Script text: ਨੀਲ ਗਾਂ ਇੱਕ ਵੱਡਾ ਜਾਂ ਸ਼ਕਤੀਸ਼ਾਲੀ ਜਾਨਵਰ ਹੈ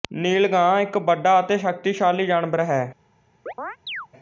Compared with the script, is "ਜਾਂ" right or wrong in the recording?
wrong